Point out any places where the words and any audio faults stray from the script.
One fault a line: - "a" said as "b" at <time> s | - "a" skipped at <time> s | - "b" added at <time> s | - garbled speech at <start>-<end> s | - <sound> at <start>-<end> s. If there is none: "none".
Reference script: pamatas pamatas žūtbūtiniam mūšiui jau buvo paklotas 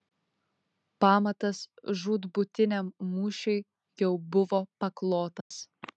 - "pamatas" skipped at 1.6 s
- dropout at 5.4-5.5 s